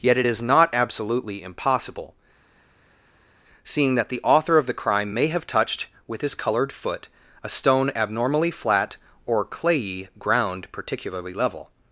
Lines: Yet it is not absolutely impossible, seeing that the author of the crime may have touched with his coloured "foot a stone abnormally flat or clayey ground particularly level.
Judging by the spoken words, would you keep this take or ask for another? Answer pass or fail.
pass